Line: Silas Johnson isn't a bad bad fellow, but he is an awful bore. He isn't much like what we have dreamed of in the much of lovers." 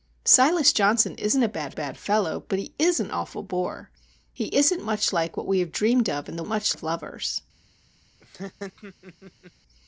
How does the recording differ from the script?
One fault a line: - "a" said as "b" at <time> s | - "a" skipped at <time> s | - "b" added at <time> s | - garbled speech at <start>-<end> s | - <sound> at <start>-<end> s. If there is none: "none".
- laugh at 8.2-9.5 s